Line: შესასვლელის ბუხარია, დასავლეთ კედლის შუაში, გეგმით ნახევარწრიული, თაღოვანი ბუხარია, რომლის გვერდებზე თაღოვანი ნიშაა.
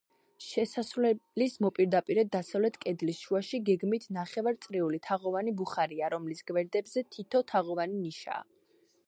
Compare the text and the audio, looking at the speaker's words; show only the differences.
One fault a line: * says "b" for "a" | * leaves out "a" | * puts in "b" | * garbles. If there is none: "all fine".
* says "მოპირდაპირედ" for "ბუხარია"
* puts in "თითო"